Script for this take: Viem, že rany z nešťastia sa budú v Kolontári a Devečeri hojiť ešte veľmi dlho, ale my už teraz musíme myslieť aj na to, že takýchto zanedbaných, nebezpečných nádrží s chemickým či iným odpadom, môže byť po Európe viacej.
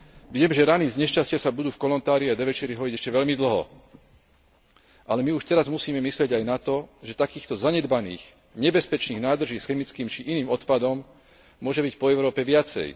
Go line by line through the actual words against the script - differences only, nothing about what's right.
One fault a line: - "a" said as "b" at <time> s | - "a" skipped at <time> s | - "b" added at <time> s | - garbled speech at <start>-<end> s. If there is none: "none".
none